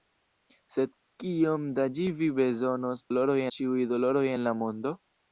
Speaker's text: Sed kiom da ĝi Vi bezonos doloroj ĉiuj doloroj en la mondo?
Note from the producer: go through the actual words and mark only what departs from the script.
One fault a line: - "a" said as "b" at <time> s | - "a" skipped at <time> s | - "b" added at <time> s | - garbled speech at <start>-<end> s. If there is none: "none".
none